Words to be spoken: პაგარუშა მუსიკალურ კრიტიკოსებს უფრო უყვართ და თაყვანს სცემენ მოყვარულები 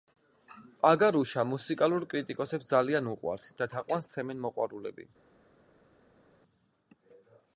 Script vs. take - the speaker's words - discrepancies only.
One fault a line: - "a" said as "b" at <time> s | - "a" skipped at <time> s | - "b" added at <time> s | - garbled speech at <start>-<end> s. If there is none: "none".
- "უფრო" said as "ძალიან" at 2.7 s